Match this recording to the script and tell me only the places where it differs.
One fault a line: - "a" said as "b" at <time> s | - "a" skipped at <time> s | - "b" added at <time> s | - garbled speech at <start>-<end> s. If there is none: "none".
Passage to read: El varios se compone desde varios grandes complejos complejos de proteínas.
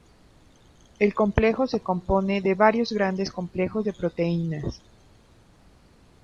- "varios" said as "complejo" at 1.1 s
- "desde" said as "de" at 2.4 s
- "complejos" skipped at 3.9 s